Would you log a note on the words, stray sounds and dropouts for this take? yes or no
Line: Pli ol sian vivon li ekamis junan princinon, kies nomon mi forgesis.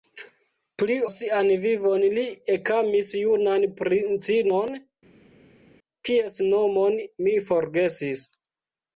yes